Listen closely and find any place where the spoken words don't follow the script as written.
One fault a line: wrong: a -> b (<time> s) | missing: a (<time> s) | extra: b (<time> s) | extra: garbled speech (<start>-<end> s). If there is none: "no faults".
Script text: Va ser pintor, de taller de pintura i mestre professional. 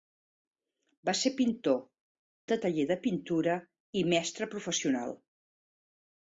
no faults